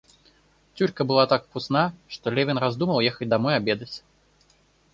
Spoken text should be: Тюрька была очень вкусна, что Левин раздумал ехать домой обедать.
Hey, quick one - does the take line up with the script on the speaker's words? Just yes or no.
no